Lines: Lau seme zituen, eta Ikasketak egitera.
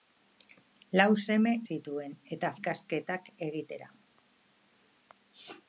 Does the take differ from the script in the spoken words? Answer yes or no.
no